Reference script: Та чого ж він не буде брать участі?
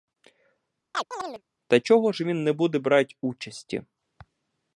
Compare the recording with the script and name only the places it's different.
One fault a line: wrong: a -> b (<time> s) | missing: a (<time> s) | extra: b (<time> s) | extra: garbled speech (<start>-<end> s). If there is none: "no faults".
no faults